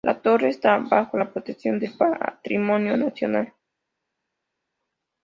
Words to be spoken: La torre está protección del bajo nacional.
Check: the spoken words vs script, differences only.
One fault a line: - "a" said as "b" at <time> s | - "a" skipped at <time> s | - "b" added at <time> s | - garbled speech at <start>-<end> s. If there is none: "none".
- "bajo la" added at 0.8 s
- "bajo" said as "patrimonio" at 2.0 s